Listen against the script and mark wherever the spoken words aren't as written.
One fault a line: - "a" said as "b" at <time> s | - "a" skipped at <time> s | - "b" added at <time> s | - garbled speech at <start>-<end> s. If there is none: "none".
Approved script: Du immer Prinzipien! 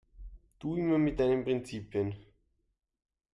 - "mit deinen" added at 1.0 s